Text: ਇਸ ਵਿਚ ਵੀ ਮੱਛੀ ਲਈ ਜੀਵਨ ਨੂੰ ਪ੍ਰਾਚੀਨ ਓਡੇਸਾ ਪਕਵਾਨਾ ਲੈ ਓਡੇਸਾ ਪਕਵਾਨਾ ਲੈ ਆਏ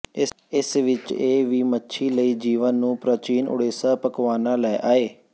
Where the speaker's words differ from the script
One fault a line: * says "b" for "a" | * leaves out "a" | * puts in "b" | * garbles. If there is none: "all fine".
* puts in "ਇਹ"
* leaves out "ਓਡੇਸਾ ਪਕਵਾਨਾ ਲੈ"